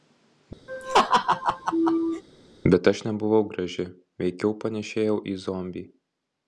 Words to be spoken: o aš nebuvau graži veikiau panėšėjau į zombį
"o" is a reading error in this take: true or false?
true